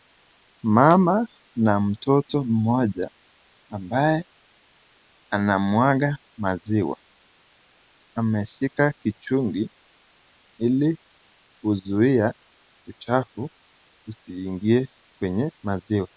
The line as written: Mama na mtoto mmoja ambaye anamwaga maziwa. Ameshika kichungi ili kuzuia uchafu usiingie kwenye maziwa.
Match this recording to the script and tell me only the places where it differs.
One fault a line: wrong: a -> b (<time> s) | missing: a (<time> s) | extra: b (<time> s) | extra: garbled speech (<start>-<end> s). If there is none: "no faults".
no faults